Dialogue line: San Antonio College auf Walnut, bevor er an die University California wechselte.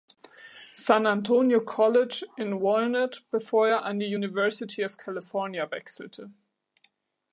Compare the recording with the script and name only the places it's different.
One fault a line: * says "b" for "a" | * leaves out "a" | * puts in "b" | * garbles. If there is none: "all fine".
* says "in" for "auf"
* puts in "of"